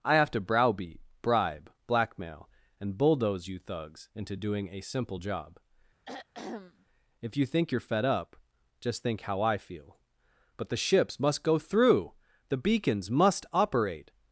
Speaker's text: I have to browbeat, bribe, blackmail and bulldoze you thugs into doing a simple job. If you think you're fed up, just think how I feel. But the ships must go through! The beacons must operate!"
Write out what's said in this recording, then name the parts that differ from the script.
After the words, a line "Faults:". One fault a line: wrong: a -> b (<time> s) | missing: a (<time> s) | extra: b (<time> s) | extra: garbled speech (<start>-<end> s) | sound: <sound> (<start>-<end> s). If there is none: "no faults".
I have to browbeat, bribe, blackmail and bulldoze you thugs into doing a simple job. If you think you're fed up, just think how I feel. But the ships must go through! The beacons must operate!"
Faults:
sound: throat clearing (6.0-6.9 s)